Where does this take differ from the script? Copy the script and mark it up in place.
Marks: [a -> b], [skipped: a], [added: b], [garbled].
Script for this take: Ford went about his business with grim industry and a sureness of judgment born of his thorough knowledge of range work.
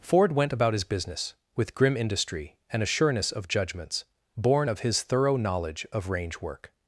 Ford went about his business with grim industry and a sureness of [judgment -> judgments] born of his thorough knowledge of range work.